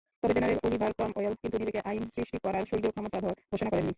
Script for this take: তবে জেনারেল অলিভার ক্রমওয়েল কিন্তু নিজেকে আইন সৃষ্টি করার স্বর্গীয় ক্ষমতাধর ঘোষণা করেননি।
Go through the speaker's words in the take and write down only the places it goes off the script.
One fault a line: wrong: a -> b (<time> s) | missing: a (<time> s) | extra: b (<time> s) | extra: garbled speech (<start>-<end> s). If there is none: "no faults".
no faults